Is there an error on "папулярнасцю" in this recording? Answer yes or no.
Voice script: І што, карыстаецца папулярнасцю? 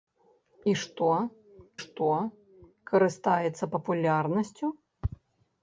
no